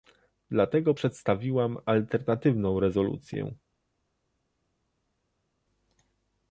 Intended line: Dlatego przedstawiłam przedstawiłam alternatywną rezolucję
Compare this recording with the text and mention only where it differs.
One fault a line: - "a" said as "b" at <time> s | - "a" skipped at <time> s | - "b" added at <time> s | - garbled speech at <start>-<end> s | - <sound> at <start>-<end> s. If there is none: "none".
- "przedstawiłam" skipped at 1.8 s